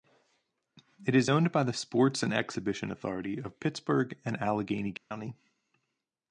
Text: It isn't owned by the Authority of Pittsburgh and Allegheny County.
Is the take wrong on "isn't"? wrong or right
wrong